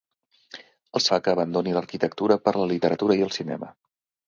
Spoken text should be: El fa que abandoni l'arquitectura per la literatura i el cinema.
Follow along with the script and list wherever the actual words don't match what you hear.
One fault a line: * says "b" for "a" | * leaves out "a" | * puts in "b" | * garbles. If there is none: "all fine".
all fine